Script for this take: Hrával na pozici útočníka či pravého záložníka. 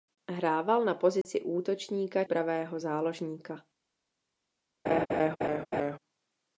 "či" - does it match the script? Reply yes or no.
no